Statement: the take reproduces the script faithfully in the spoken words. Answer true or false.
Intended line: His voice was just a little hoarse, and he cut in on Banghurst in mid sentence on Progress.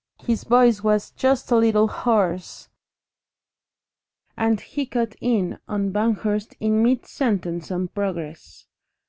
true